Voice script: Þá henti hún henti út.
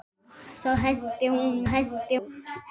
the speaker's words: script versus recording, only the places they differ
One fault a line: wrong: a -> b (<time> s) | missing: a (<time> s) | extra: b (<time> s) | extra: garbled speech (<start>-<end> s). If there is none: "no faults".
no faults